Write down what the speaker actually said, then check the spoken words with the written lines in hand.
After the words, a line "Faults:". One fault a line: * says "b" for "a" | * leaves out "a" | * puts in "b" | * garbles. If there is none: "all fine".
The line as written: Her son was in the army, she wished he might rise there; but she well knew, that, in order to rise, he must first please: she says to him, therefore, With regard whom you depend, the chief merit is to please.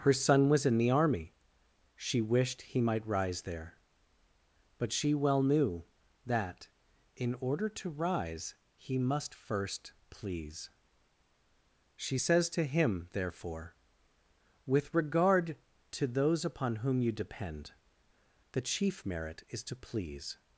Her son was in the army, she wished he might rise there; but she well knew, that, in order to rise, he must first please: she says to him, therefore, With regard to those upon whom you depend, the chief merit is to please.
Faults:
* puts in "to those upon"